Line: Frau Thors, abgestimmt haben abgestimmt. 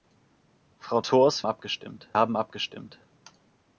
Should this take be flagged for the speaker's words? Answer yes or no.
no